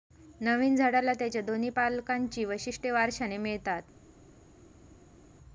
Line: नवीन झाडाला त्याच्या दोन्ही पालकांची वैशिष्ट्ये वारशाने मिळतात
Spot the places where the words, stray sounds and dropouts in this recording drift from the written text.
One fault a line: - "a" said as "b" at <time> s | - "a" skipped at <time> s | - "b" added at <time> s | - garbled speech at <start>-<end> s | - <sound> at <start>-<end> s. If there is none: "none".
none